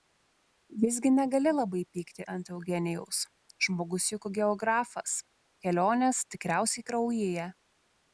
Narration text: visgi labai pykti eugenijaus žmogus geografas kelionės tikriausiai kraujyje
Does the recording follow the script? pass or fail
fail